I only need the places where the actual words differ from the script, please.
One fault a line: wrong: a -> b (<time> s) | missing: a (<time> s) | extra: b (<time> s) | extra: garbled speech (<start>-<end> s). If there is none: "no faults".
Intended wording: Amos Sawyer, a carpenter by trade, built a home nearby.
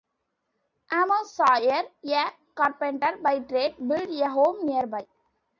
no faults